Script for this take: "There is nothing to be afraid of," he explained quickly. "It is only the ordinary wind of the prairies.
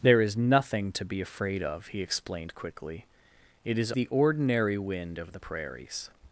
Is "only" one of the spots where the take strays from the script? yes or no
yes